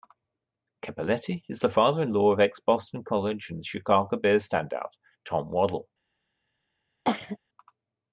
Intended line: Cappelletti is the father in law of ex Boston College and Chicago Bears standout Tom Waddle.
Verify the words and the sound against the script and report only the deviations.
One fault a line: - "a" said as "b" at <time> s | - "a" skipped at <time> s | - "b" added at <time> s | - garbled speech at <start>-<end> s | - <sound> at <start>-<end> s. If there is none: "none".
- cough at 7.1-7.4 s